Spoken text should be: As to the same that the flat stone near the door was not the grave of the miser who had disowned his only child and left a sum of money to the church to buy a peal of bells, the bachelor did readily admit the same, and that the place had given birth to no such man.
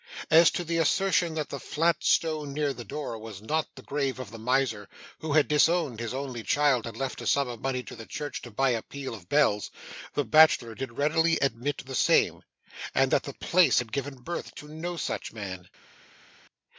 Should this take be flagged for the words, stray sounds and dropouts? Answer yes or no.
yes